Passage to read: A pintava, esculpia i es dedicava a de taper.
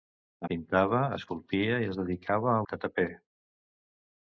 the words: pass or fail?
pass